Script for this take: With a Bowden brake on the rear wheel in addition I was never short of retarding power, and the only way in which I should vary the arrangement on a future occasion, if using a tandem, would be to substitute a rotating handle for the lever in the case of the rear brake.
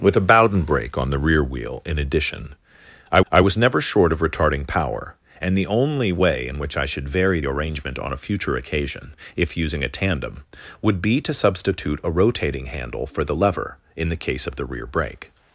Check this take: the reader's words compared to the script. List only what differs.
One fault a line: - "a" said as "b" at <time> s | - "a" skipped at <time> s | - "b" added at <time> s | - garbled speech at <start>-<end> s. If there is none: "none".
- "I" added at 3.3 s
- "the" skipped at 7.4 s